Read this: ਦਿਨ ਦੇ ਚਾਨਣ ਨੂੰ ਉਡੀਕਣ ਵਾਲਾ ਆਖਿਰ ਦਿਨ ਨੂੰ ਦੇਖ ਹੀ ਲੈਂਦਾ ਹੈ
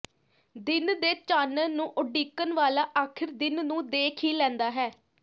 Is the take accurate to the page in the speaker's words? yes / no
yes